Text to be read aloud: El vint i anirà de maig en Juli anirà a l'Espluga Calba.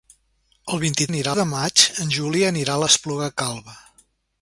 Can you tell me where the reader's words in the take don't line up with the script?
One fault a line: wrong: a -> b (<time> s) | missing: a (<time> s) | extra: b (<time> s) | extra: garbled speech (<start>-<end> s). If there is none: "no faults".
no faults